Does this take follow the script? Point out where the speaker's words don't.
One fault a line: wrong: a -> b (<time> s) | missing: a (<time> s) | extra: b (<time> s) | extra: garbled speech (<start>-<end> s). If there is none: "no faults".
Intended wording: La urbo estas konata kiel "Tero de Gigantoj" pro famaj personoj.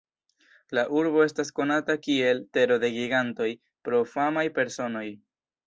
no faults